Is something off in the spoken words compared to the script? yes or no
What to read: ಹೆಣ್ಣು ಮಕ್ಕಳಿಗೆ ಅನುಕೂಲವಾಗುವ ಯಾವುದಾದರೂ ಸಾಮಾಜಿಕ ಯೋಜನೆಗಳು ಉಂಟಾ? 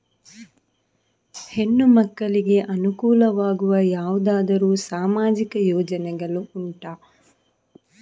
no